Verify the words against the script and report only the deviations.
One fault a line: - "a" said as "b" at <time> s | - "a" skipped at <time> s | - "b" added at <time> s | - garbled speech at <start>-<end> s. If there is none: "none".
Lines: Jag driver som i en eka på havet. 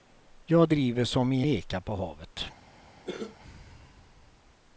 - "en" skipped at 1.4 s